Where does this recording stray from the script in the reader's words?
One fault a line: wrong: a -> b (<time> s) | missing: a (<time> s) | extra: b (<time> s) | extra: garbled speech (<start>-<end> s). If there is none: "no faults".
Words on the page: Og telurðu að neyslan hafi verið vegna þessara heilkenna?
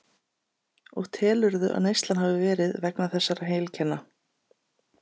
no faults